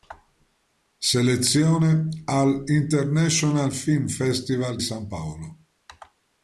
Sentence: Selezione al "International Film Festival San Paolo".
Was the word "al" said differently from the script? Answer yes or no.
no